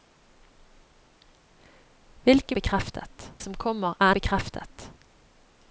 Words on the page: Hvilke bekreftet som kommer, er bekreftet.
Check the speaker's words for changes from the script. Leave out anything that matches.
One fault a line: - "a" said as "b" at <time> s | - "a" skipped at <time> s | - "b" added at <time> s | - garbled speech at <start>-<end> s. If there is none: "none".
none